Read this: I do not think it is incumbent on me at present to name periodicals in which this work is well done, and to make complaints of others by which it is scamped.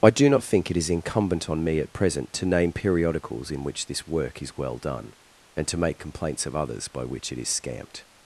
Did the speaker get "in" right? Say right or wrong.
right